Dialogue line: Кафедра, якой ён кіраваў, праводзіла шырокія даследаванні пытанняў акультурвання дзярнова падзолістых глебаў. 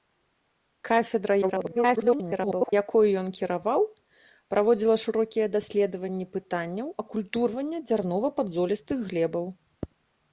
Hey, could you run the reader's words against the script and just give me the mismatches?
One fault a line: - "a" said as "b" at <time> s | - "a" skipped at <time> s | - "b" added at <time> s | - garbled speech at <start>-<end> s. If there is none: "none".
- garbled speech at 1.4-2.7 s